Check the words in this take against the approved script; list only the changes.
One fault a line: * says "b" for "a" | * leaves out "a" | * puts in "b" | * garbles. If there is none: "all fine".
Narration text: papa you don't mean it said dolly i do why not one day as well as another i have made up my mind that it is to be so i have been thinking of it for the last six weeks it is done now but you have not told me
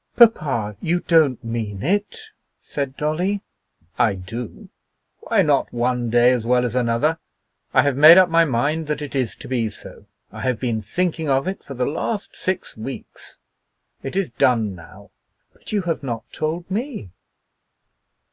all fine